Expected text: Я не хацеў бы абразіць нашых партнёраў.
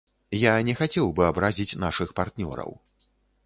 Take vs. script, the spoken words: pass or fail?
pass